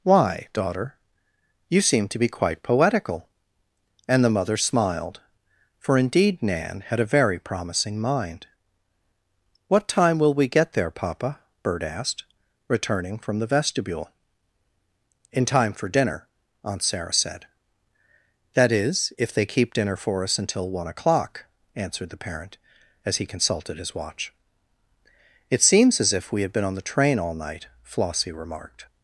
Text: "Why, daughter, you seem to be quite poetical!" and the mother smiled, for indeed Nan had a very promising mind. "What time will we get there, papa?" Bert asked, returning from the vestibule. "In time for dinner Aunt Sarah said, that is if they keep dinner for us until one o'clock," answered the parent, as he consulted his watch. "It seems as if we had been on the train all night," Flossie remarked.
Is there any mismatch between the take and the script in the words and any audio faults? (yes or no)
no